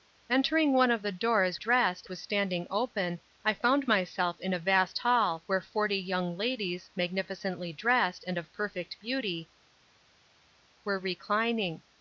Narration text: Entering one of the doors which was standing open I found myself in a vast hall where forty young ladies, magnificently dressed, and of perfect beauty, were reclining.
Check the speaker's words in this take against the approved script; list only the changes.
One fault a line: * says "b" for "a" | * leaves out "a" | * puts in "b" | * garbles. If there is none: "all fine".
* says "dressed" for "which"